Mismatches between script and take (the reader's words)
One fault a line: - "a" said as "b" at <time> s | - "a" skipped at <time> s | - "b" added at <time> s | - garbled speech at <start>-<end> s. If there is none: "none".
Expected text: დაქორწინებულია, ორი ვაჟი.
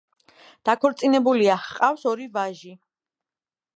- "ჰყავს" added at 1.7 s